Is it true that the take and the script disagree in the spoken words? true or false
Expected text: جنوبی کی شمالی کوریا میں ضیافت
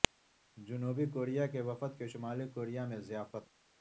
true